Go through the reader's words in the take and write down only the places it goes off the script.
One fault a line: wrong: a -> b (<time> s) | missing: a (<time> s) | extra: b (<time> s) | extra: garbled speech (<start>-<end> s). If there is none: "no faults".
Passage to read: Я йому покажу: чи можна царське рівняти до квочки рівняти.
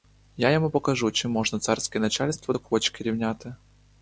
wrong: рівняти -> начальство (2.0 s)